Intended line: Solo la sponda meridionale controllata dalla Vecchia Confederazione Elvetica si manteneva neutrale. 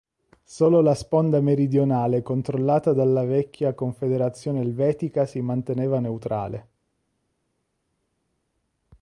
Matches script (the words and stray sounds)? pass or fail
pass